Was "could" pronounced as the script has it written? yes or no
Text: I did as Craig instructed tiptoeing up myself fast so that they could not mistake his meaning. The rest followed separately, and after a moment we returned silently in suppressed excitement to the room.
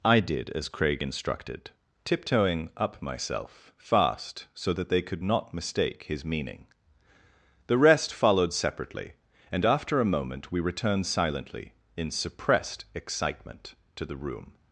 yes